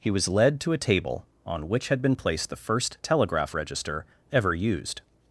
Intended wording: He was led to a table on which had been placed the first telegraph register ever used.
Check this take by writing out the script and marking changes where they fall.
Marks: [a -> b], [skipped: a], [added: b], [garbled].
He was led to a table on which had been placed the first telegraph register ever used.